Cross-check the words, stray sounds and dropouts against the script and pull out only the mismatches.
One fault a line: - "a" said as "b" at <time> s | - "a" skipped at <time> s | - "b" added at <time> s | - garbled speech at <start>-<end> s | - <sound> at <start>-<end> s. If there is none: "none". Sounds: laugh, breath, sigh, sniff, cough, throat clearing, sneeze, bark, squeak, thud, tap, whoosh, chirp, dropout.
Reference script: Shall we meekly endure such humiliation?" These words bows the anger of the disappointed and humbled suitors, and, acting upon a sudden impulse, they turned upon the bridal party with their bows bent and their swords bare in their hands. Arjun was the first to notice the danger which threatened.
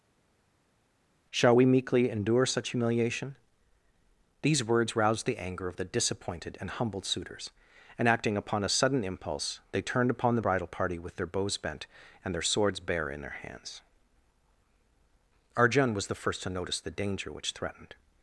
- "bows" said as "roused" at 4.9 s